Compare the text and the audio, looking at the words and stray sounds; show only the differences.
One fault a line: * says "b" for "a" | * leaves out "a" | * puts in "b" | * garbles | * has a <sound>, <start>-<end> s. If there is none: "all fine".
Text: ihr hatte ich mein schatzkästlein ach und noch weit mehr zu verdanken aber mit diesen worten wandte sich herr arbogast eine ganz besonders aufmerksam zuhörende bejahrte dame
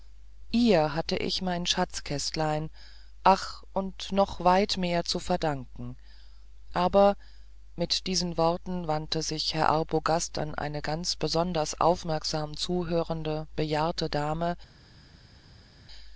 * puts in "an"